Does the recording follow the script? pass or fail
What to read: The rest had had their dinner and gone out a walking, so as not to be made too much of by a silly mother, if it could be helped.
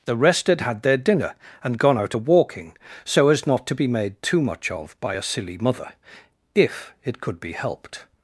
pass